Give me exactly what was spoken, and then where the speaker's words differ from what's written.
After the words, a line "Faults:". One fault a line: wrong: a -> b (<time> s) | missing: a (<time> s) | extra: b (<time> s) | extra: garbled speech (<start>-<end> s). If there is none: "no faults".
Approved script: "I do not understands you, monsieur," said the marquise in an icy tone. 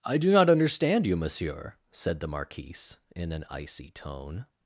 "I do not understand you, monsieur," said the marquise in an icy tone.
Faults:
wrong: understands -> understand (0.5 s)